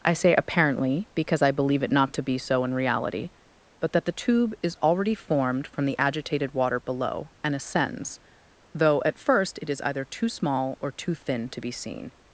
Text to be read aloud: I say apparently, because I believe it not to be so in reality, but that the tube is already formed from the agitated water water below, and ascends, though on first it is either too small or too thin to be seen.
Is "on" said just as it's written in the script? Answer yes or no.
no